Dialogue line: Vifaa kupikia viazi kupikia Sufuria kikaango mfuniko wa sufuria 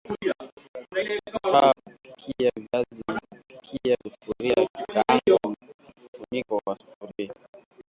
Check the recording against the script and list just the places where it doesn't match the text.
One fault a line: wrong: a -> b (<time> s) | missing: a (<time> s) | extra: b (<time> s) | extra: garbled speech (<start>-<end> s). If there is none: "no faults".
no faults